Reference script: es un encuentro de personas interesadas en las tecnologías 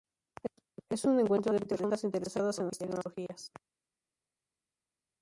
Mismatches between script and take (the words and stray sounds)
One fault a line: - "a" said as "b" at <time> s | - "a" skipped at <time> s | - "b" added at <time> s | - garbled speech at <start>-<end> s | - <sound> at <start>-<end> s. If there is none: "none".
none